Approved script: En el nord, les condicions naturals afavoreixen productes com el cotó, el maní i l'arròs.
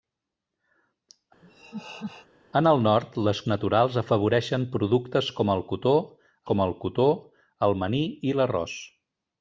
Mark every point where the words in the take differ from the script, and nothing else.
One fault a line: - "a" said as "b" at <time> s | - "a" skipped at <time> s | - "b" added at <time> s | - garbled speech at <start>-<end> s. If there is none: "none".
- "condicions" skipped at 3.4 s
- "com el cotó" added at 6.5 s